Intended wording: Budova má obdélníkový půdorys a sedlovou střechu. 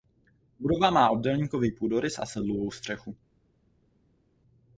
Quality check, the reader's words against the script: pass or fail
pass